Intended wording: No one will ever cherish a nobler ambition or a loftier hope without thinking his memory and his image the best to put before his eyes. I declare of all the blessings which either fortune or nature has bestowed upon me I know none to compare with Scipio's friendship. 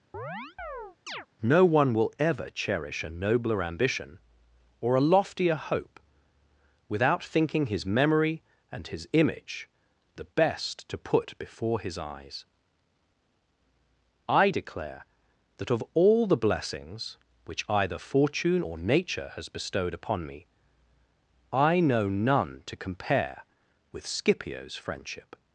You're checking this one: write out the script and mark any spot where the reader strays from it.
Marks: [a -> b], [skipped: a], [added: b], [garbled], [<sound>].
[chirp] No one will ever cherish a nobler ambition or a loftier hope without thinking his memory and his image the best to put before his eyes. I declare [added: that] of all the blessings which either fortune or nature has bestowed upon me I know none to compare with Scipio's friendship.